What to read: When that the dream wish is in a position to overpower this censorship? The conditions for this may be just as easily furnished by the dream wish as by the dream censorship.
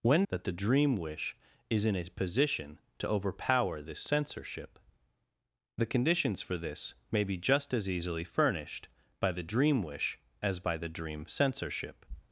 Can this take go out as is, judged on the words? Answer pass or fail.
pass